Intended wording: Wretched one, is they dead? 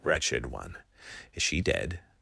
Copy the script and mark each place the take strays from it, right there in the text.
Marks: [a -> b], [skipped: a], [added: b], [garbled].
Wretched one, is [they -> she] dead?